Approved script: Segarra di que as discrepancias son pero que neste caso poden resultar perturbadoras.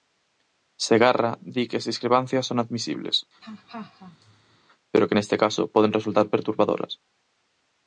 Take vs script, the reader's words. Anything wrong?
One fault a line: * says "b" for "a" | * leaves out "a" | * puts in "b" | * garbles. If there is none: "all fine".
* puts in "admisibles"